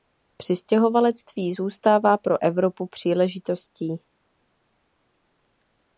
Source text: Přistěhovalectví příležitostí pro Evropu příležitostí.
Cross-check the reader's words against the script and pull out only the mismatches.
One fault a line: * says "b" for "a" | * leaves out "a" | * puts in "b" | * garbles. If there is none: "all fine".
* says "zůstává" for "příležitostí"